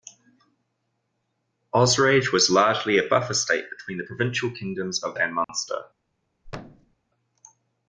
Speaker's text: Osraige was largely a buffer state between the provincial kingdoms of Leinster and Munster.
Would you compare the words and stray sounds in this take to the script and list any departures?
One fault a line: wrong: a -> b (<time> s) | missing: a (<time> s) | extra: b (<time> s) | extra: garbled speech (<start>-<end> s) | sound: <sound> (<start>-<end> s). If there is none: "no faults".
missing: Leinster (5.2 s)
sound: dropout (5.4-5.5 s)
sound: thud (6.4-7.0 s)